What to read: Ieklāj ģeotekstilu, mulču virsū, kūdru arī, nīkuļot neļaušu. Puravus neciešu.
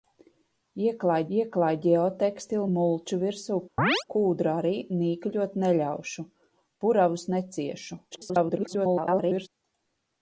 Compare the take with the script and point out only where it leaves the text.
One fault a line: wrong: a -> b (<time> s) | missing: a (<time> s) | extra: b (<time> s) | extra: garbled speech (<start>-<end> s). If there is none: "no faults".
extra: ieklāj (1.4 s)
extra: garbled speech (8.1-9.5 s)